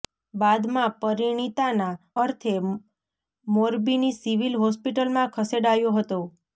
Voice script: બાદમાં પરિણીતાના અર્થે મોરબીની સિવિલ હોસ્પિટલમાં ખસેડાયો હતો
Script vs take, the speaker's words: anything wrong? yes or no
no